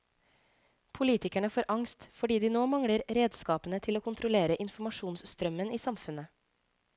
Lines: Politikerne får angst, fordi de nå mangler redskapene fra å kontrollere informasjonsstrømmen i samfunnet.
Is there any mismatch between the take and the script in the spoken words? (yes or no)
yes